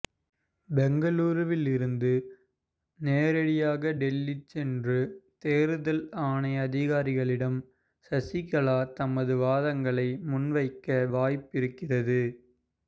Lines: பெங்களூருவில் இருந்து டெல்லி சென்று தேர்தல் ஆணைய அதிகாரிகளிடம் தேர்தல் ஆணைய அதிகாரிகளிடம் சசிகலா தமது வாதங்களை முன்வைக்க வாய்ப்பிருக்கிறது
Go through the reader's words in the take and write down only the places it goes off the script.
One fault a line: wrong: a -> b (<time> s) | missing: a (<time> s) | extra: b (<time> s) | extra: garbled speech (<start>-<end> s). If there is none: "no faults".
extra: நேரடியாக (3.0 s)
missing: தேர்தல் ஆணைய அதிகாரிகளிடம் (7.6 s)